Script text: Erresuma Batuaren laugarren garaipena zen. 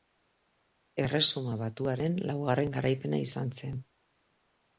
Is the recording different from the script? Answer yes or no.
yes